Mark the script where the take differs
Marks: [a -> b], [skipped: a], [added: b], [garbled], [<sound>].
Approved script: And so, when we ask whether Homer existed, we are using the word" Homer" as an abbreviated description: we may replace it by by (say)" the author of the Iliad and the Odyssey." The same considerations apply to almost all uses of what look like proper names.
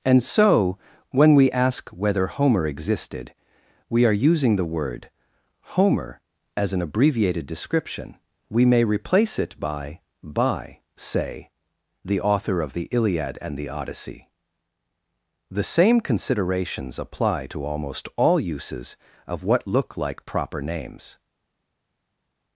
And so, when we ask whether Homer existed, we are using the word" Homer" as an abbreviated description: we may replace it by by (say)" the author of the Iliad and the Odyssey." The same considerations apply to almost all uses of what look like proper names.